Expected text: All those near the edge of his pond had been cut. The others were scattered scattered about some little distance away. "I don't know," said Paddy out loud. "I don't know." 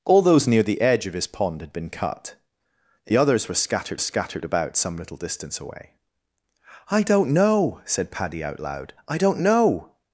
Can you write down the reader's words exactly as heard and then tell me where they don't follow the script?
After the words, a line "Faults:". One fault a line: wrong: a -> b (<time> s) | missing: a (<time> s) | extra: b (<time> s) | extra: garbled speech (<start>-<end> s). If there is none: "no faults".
All those near the edge of his pond had been cut. The others were scattered scattered about some little distance away. "I don't know," said Paddy out loud. "I don't know."
Faults:
no faults